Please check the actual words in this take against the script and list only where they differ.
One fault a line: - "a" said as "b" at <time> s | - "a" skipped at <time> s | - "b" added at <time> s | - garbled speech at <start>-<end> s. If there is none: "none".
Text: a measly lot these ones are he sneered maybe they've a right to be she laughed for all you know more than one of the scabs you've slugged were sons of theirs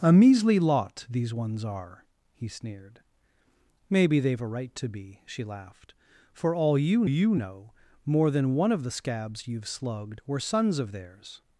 - "you" added at 7.0 s